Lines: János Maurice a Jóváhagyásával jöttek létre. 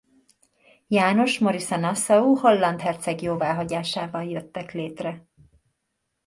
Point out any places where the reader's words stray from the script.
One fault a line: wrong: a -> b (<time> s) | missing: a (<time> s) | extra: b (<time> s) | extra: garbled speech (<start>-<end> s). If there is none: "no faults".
extra: Nassau holland herceg (1.8 s)